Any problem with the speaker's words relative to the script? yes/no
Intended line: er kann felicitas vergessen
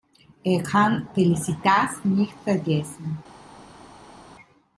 yes